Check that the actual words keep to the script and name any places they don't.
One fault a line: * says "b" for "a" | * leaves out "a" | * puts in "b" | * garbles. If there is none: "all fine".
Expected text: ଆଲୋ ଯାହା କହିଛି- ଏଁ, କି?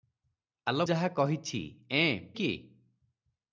all fine